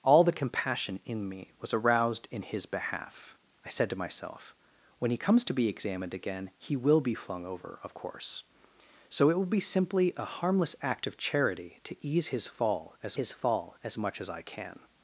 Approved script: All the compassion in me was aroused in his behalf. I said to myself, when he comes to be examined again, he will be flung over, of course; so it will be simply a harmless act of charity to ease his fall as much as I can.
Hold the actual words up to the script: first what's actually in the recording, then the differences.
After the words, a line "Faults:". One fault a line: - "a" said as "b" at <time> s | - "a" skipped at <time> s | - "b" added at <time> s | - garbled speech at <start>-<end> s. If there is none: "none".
All the compassion in me was aroused in his behalf. I said to myself, when he comes to be examined again, he will be flung over, of course; so it will be simply a harmless act of charity to ease his fall as his fall as much as I can.
Faults:
- "his fall as" added at 13.1 s